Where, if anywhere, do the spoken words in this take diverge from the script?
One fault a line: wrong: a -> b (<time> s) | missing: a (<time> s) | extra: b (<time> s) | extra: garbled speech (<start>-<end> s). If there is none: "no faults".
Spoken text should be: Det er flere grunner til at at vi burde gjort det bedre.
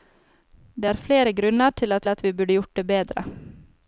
no faults